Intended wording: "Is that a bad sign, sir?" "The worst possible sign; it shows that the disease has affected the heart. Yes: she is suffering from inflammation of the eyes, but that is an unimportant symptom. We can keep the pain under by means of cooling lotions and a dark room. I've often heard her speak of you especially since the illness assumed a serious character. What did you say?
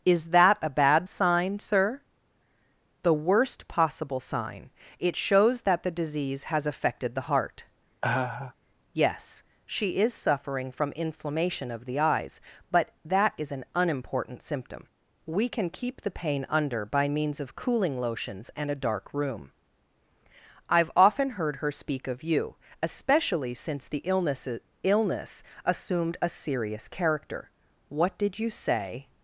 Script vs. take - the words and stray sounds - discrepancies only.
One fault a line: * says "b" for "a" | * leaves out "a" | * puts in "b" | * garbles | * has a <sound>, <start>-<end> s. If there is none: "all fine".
* has a laugh, 8.0-8.5 s
* puts in "illness"